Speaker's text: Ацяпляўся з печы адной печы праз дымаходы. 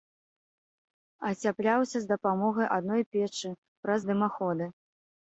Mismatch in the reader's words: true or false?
true